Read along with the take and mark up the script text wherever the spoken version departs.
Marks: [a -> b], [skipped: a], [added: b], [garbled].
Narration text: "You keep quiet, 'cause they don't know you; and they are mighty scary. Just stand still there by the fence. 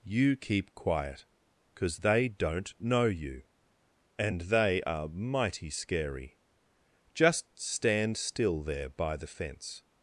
"You keep quiet, 'cause they don't know you; and they are mighty scary. Just stand still there by the fence.